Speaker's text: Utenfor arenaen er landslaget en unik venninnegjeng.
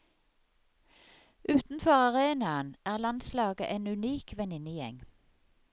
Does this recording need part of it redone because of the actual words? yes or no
no